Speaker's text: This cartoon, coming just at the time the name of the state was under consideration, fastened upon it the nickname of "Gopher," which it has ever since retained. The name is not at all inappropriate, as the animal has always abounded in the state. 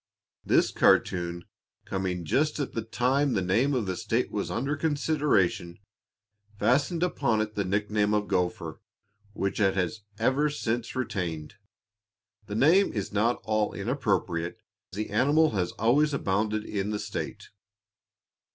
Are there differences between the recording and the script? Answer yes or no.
yes